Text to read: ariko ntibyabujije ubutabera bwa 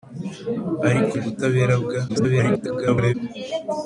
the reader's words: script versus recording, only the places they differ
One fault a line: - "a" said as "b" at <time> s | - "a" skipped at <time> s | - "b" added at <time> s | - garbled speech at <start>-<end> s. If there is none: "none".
- "ntibyabujije" skipped at 1.1 s
- garbled speech at 2.1-3.1 s